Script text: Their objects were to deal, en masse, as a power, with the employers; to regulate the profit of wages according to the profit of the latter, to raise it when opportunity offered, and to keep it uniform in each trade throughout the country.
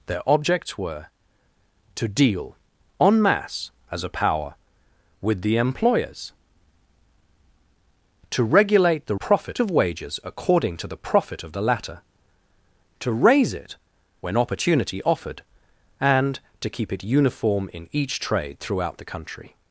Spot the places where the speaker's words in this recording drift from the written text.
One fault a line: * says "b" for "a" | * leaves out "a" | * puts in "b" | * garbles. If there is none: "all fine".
all fine